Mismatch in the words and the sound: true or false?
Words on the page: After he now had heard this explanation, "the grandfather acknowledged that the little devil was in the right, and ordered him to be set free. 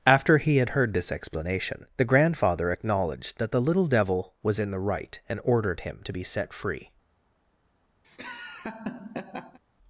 true